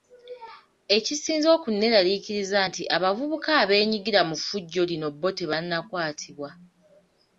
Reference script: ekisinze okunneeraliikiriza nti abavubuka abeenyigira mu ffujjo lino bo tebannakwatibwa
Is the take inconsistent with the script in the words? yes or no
no